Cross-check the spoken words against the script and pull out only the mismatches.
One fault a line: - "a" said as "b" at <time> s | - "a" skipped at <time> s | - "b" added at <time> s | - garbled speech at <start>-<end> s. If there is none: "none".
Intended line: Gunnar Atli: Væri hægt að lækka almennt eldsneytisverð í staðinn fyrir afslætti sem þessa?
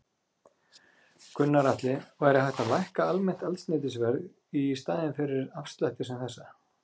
none